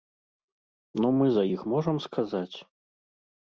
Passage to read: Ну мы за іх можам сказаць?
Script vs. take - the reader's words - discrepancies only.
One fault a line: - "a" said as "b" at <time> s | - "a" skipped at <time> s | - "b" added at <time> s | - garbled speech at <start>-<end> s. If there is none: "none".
none